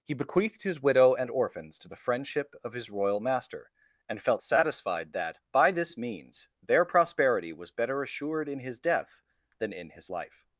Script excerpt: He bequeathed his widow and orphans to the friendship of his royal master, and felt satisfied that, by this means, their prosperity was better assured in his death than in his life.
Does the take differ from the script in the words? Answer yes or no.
no